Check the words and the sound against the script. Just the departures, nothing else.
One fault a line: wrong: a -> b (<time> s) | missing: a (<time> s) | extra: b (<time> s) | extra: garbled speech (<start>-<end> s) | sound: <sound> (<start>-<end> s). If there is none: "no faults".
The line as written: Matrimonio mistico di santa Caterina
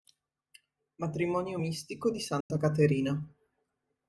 sound: dropout (2.4-2.5 s)